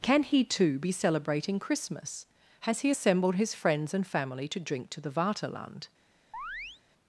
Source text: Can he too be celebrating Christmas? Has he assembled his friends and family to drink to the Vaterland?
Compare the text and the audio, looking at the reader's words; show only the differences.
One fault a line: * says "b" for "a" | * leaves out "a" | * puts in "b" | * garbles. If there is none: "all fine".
all fine